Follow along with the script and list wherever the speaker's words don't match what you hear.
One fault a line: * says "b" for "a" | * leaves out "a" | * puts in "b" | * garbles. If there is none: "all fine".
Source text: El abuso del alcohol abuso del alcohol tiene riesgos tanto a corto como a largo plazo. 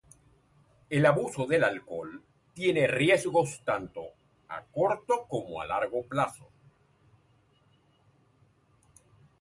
* leaves out "abuso del alcohol"